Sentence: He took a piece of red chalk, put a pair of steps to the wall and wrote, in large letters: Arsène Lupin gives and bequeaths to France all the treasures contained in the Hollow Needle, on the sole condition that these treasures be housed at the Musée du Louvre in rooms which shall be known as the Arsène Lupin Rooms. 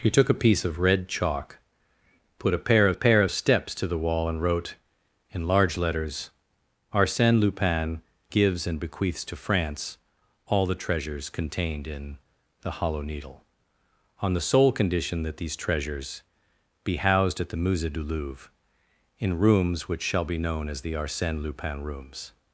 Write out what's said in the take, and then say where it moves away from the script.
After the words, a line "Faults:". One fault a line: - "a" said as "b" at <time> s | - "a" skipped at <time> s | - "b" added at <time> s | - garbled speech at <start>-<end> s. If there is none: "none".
He took a piece of red chalk, put a pair of a pair of steps to the wall and wrote, in large letters: Arsène Lupin gives and bequeaths to France all the treasures contained in the Hollow Needle, on the sole condition that these treasures be housed at the Musée du Louvre in rooms which shall be known as the Arsène Lupin Rooms.
Faults:
- "a pair of" added at 2.9 s